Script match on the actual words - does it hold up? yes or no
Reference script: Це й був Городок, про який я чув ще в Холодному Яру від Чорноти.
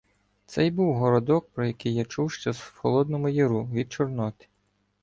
yes